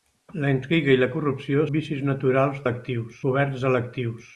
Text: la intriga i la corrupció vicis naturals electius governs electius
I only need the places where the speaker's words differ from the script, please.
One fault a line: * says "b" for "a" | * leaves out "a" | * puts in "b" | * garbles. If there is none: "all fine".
all fine